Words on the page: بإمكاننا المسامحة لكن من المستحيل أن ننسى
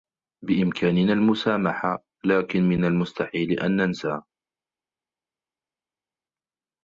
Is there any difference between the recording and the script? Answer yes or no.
no